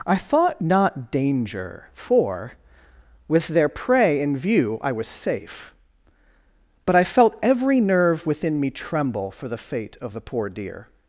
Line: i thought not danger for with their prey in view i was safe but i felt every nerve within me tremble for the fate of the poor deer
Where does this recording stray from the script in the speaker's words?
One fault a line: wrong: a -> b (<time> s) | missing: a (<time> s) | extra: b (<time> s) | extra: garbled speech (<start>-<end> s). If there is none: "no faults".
no faults